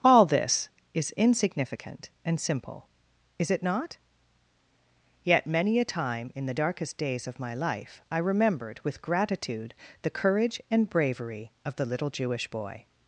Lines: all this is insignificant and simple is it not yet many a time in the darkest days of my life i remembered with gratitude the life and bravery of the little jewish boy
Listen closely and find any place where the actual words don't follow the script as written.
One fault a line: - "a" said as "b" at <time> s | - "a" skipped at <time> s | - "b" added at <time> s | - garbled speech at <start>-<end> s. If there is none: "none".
- "life" said as "courage" at 10.1 s